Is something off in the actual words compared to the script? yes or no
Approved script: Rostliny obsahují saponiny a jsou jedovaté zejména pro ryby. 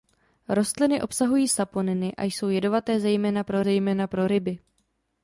yes